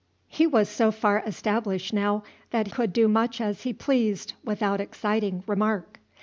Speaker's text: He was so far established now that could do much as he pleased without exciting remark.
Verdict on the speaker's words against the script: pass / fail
pass